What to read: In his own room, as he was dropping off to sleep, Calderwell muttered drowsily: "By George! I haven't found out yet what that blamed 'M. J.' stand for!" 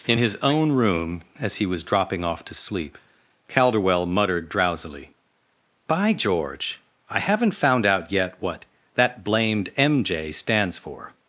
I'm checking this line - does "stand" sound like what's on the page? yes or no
no